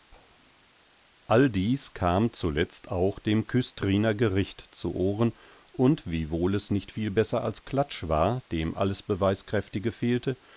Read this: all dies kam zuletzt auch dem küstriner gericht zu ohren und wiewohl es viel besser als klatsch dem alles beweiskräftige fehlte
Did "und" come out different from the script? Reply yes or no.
no